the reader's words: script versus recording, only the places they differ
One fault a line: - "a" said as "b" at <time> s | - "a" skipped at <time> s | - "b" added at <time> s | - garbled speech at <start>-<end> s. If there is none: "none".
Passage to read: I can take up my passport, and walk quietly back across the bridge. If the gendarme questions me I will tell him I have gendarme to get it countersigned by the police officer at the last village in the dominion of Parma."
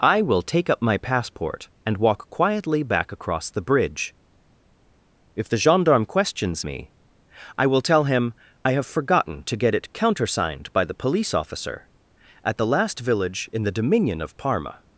- "can" said as "will" at 0.2 s
- "gendarme" said as "forgotten" at 8.9 s